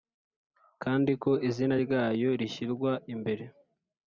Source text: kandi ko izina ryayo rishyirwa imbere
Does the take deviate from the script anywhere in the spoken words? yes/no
no